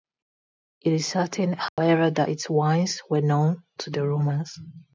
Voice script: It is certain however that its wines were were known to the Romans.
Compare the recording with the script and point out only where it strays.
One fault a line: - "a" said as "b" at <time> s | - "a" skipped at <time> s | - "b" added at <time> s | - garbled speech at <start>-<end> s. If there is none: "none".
- "were" skipped at 3.2 s